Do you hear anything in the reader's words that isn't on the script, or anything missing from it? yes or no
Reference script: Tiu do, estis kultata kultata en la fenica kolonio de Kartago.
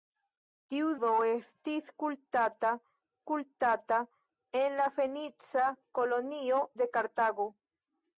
no